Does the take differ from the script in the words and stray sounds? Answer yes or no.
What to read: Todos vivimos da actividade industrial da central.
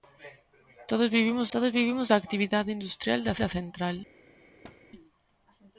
yes